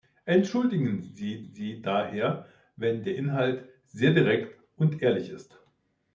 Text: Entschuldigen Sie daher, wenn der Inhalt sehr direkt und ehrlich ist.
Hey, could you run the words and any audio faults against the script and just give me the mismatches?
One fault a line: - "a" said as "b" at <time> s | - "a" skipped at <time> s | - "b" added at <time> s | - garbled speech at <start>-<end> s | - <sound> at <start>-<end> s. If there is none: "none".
- "Sie" added at 1.4 s